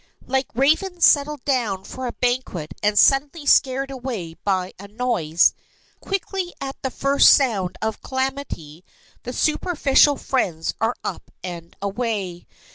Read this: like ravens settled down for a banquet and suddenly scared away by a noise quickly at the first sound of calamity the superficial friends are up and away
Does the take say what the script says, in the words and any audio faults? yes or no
yes